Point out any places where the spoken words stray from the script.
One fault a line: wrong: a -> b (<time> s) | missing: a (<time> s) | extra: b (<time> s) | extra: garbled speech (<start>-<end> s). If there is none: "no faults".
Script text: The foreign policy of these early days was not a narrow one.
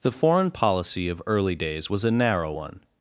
missing: these (1.2 s)
missing: not (2.0 s)